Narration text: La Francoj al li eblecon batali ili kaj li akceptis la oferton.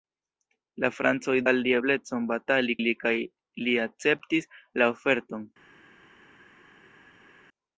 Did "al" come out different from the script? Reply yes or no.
no